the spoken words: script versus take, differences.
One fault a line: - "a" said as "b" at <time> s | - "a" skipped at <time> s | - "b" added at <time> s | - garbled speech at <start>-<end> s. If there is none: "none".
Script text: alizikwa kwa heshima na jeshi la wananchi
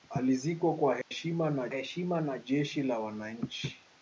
- "heshima na" added at 1.7 s